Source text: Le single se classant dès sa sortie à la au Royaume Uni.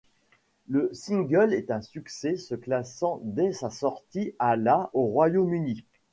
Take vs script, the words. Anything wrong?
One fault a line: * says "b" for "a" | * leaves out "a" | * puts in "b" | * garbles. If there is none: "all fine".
* puts in "est un succès"